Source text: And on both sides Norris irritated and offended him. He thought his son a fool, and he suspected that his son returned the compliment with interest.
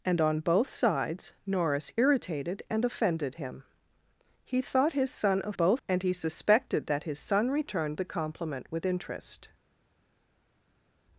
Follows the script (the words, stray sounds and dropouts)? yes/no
no